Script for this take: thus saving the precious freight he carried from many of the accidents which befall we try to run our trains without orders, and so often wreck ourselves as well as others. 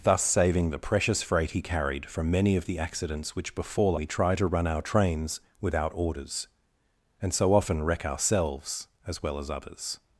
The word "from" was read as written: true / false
true